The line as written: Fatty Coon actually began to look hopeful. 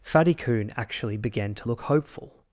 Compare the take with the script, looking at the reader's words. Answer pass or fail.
pass